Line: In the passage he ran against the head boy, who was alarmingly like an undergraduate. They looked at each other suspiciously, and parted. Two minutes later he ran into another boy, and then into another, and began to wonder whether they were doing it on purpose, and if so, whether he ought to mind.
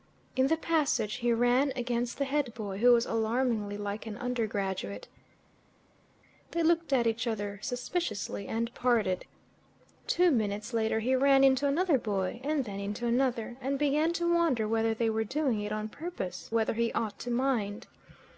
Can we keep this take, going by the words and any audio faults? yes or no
no